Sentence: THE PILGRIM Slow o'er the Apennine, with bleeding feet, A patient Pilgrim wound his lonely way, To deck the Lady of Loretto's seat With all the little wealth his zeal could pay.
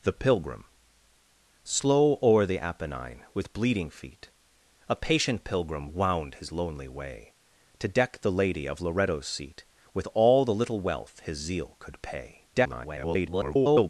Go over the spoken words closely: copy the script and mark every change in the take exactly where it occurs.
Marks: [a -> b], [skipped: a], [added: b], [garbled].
THE PILGRIM Slow o'er the Apennine, with bleeding feet, A patient Pilgrim wound his lonely way, To deck the Lady of Loretto's seat With all the little wealth his zeal could pay. [garbled]